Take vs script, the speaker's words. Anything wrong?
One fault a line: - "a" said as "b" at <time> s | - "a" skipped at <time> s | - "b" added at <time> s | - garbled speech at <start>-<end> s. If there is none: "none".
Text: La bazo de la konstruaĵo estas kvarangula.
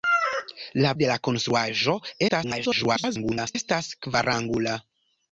- "bazo" skipped at 0.9 s
- garbled speech at 2.3-3.6 s